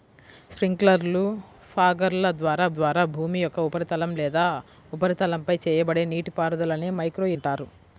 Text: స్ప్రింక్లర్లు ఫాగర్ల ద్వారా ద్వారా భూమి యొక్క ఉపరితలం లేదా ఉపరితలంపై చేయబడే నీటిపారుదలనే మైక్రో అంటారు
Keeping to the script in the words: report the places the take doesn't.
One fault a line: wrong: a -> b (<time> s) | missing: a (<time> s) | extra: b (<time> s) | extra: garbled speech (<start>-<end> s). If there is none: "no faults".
no faults